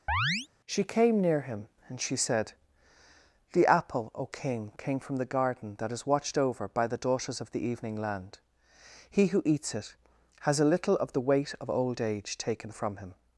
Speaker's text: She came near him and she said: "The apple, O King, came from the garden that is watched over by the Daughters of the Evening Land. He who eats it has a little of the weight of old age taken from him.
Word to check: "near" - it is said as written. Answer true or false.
true